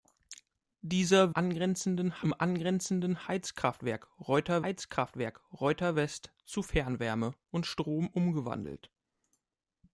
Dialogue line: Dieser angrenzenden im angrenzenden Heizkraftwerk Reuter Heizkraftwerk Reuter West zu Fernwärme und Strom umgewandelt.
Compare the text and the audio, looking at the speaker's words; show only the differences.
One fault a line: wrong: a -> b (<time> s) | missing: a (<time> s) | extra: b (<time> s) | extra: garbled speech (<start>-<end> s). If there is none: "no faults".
no faults